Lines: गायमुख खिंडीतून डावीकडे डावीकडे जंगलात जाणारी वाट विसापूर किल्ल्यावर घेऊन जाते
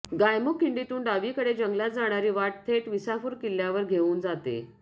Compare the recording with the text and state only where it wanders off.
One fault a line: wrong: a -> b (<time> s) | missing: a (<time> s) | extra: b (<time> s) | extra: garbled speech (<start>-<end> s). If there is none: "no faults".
missing: डावीकडे (1.5 s)
extra: थेट (2.7 s)